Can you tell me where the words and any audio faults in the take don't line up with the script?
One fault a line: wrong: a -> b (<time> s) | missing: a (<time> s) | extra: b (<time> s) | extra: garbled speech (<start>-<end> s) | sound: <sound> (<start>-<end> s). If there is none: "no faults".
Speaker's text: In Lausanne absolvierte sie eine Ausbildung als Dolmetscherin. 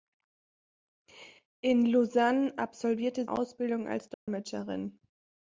missing: sie eine (3.3 s)
sound: dropout (4.1-4.3 s)